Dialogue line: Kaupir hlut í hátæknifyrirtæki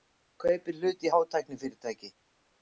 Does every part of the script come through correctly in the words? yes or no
yes